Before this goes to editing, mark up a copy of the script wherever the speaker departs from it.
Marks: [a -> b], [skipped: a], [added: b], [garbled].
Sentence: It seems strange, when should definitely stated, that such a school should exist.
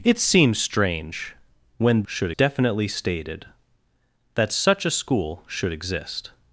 It seems strange, when should definitely stated, that such a school should exist.